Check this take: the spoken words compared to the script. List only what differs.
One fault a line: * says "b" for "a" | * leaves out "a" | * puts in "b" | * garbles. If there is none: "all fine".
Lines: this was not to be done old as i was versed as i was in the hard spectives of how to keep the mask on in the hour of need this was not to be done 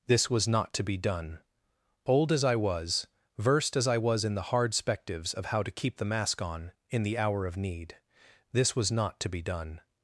all fine